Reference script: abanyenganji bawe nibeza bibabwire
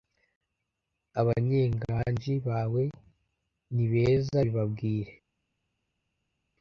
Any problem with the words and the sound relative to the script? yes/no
no